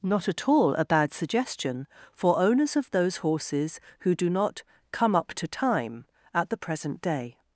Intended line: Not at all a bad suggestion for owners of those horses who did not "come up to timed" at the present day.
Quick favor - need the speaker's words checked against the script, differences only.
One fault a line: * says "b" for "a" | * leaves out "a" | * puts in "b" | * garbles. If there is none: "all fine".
* says "do" for "did"
* says "time" for "timed"